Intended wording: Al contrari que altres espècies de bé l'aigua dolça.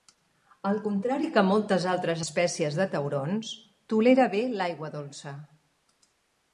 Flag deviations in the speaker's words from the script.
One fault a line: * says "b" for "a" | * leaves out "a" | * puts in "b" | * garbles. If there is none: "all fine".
* puts in "moltes"
* puts in "taurons tolera"